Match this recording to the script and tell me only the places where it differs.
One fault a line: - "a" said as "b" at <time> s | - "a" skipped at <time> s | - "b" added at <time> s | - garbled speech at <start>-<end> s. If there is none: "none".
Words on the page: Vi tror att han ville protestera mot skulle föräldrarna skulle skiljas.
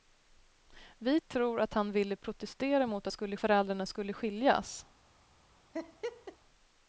none